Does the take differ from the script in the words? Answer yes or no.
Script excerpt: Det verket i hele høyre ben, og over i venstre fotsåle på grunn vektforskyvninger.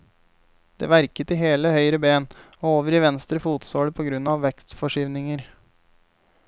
yes